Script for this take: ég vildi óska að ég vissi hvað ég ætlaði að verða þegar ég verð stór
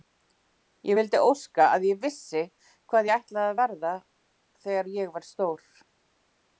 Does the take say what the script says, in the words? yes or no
yes